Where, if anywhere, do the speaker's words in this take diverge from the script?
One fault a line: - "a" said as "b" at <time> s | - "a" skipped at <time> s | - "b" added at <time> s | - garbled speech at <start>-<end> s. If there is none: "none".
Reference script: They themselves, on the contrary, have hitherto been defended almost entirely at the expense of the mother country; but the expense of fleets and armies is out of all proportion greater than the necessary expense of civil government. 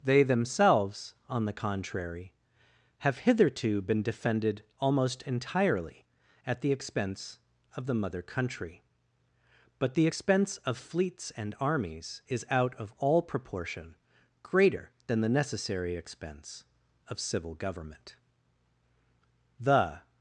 - "The" added at 19.6 s